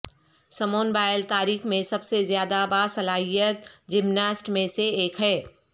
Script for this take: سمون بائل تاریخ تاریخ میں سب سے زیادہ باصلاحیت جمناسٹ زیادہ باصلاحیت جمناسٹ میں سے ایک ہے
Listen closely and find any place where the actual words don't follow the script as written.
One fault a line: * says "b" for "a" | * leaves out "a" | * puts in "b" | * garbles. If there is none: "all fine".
* leaves out "تاریخ"
* leaves out "زیادہ باصلاحیت جمناسٹ"